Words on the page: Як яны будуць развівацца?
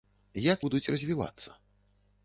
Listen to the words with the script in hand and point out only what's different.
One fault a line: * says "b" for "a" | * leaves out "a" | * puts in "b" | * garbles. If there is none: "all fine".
* leaves out "яны"